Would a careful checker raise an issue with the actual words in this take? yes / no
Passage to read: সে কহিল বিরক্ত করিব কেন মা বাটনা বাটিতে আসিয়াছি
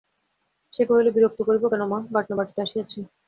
no